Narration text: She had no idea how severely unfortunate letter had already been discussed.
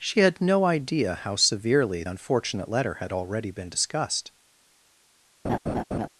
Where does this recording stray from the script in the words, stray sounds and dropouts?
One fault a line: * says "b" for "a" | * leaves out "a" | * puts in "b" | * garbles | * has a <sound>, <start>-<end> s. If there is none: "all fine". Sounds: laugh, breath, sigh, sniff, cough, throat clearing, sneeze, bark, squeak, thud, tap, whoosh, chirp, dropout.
* has a laugh, 5.4-6.1 s